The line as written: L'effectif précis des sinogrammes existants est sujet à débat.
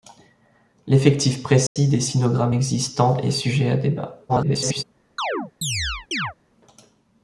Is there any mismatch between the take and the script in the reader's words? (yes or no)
yes